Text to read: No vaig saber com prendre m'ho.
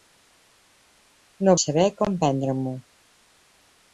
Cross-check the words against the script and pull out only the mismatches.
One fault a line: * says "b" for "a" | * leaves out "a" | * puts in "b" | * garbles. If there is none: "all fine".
* leaves out "vaig"